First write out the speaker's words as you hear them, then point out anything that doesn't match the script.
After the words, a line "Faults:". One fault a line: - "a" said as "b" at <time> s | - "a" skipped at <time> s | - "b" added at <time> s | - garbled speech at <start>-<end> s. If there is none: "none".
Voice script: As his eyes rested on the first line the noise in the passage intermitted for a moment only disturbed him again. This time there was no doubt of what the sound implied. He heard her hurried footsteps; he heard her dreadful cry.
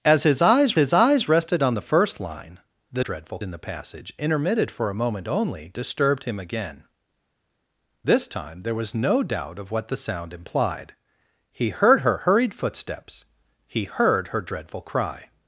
As his eyes his eyes rested on the first line the dreadful in the passage intermitted for a moment only disturbed him again. This time there was no doubt of what the sound implied. He heard her hurried footsteps; he heard her dreadful cry.
Faults:
- "his eyes" added at 0.7 s
- "noise" said as "dreadful" at 3.0 s